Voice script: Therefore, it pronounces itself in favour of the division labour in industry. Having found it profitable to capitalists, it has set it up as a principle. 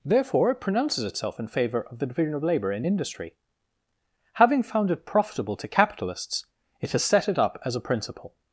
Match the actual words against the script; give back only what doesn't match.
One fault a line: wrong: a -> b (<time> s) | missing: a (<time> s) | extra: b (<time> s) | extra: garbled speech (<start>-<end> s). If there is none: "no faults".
extra: of (2.3 s)